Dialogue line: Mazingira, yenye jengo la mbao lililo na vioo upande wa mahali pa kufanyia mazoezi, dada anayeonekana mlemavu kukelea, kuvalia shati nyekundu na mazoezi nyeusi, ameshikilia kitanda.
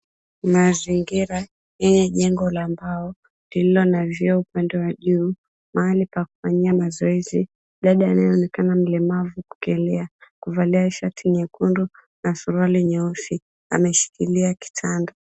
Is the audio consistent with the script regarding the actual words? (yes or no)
no